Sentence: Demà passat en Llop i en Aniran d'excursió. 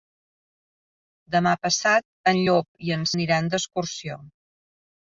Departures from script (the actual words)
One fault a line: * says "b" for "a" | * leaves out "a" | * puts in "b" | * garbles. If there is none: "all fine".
all fine